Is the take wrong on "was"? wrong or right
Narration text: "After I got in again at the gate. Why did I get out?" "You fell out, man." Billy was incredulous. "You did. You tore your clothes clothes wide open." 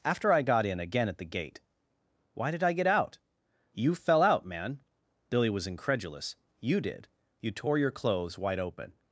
right